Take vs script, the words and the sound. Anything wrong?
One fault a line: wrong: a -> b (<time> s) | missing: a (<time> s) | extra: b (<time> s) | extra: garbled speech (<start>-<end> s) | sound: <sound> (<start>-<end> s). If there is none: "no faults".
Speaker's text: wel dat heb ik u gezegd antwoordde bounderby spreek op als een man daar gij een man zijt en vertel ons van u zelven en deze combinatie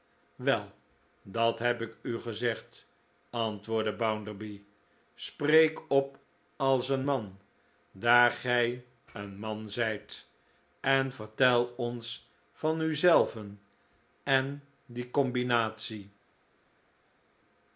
wrong: deze -> die (14.9 s)